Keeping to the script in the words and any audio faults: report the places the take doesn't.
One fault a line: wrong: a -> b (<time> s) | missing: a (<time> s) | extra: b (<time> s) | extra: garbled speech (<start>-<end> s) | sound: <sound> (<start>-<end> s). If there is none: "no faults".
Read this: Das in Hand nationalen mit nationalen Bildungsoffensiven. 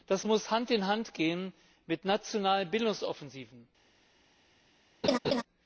extra: muss Hand (0.2 s)
wrong: nationalen -> gehen (1.1 s)
sound: laugh (5.0-5.4 s)